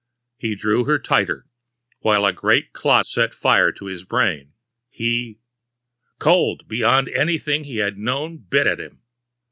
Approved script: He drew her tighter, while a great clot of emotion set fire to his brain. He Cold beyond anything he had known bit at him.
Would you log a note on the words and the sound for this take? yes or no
yes